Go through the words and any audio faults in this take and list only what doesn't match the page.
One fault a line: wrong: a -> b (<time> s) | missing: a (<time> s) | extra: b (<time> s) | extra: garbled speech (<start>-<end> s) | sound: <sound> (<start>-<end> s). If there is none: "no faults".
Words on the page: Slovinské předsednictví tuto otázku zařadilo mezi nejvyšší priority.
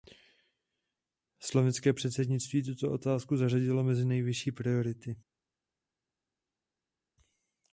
no faults